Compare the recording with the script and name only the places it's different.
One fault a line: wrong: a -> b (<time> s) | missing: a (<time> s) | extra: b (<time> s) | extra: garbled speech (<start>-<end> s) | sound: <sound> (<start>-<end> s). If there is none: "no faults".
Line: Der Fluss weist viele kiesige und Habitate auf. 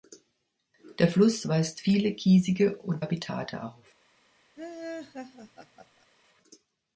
sound: laugh (4.6-6.1 s)